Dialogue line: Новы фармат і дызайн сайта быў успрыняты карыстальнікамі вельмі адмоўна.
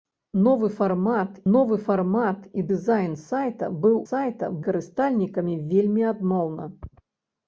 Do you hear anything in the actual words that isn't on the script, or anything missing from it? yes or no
yes